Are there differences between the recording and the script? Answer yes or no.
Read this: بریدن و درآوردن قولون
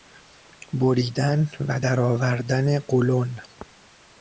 no